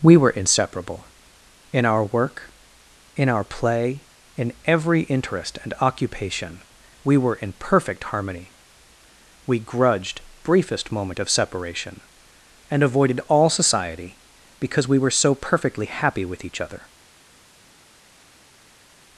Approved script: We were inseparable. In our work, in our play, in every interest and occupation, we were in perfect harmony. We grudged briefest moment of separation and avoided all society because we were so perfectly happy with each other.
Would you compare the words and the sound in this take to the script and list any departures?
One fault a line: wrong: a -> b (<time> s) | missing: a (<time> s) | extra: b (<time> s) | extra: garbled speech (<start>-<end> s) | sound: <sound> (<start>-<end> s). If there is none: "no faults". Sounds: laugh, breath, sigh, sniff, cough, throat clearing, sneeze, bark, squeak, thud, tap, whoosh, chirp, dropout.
no faults